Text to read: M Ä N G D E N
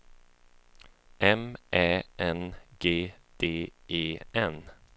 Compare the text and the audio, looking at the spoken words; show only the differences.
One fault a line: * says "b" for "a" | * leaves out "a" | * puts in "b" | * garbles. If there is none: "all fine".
all fine